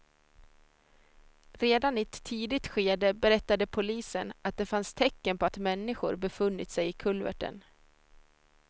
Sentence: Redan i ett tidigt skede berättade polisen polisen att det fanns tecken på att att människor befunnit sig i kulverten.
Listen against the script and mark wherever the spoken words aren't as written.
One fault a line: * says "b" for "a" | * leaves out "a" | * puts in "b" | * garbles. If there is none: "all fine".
* leaves out "polisen"
* leaves out "att"